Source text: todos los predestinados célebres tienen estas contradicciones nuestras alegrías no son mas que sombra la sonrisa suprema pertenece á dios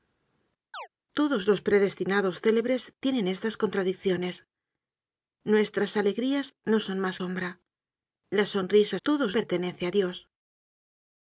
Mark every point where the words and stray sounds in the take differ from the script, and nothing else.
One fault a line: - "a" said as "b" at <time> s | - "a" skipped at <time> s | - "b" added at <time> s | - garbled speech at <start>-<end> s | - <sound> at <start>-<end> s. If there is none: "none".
- chirp at 0.7-0.9 s
- "que" skipped at 7.2 s
- "suprema" said as "todos" at 9.1 s